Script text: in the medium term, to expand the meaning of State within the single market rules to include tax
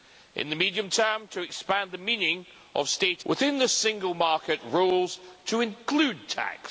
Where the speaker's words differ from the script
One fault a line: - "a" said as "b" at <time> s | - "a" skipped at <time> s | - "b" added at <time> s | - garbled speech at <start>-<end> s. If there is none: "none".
none